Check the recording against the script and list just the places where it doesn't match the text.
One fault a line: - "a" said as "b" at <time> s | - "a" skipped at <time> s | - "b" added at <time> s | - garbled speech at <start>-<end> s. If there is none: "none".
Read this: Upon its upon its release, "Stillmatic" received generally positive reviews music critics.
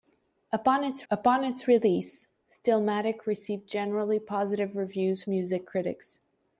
none